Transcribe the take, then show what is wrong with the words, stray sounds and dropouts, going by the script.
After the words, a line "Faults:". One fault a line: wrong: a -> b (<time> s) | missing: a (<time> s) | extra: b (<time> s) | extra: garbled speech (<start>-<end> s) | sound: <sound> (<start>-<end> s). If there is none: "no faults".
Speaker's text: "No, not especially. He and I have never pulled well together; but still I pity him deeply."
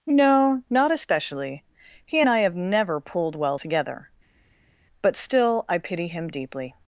"No, not especially. He and I have never pulled well together; but still I pity him deeply."
Faults:
no faults